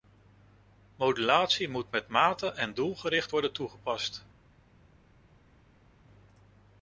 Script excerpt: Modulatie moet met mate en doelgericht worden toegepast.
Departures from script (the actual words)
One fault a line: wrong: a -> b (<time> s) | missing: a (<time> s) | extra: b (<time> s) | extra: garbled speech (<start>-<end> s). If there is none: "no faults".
no faults